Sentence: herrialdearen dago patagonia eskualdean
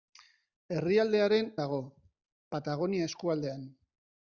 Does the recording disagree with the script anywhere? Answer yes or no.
no